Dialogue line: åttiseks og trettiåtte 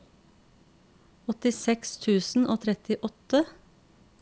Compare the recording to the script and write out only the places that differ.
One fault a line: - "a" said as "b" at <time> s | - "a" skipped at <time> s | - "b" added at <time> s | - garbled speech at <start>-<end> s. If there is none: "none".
- "tusen" added at 2.0 s